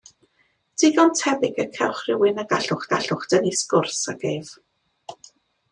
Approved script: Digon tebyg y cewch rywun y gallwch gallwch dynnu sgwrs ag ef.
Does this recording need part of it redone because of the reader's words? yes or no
no